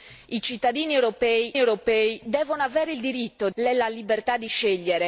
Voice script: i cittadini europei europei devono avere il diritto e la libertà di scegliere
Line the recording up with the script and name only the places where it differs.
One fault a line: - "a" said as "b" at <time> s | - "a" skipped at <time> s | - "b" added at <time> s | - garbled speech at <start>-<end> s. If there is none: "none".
none